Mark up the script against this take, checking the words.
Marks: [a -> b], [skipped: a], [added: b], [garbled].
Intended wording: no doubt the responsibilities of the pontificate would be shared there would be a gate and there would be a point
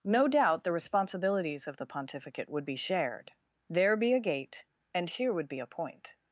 no doubt the responsibilities of the pontificate would be shared there [skipped: would] be a gate and [there -> here] would be a point